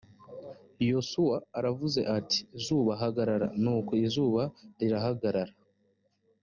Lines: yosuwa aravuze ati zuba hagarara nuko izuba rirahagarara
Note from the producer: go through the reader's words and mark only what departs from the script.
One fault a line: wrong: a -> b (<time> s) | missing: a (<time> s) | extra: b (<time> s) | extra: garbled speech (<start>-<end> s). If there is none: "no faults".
no faults